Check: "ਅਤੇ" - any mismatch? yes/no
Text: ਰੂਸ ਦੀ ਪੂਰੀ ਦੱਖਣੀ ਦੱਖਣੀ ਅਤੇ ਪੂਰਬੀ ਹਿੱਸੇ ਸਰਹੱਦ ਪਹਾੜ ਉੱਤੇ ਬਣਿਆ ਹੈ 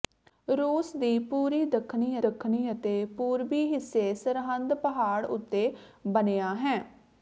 no